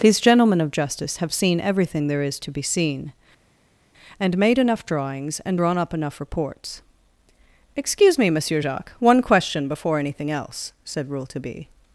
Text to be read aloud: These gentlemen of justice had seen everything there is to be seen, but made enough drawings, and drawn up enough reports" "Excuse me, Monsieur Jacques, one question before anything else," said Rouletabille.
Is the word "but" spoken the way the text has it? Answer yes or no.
no